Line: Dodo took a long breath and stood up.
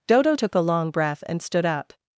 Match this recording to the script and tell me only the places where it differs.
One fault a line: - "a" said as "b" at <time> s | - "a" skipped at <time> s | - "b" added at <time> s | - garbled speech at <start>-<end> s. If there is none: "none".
none